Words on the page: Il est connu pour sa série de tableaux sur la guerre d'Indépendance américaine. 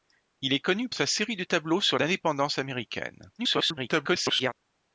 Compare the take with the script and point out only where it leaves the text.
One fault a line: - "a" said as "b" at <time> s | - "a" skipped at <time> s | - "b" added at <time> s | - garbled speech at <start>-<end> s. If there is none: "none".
- "pour" skipped at 0.9 s
- "la guerre" skipped at 2.0 s
- garbled speech at 3.4-4.5 s